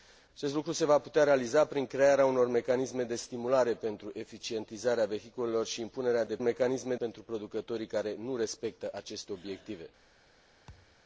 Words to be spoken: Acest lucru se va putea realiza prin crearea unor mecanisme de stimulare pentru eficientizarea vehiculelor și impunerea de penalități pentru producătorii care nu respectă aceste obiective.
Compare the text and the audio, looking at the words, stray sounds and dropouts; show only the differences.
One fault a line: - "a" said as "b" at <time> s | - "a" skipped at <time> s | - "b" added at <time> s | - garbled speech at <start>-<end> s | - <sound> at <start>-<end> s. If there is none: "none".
- "penalități" said as "mecanisme" at 6.4 s
- thud at 10.7-11.0 s